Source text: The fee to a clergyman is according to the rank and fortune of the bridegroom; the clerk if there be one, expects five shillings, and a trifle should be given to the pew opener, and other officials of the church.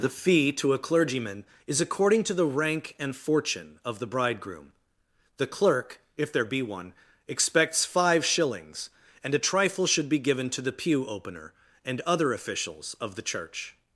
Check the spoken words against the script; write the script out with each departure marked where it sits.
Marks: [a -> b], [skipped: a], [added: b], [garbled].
The fee to a clergyman is according to the rank and fortune of the bridegroom; the clerk if there be one, expects five shillings, and a trifle should be given to the pew opener, and other officials of the church.